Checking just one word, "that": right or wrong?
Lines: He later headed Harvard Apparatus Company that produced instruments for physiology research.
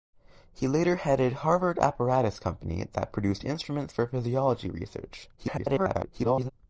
right